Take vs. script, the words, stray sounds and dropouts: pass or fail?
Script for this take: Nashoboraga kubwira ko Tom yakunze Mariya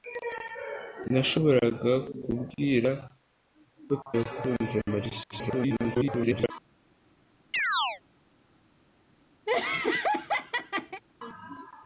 fail